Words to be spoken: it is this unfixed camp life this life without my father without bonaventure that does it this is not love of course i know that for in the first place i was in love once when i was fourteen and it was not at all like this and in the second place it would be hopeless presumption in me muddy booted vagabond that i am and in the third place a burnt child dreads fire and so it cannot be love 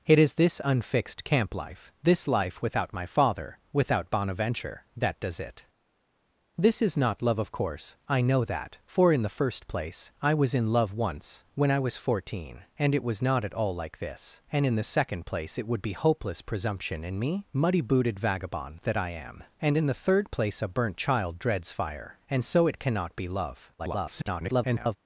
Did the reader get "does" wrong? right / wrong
right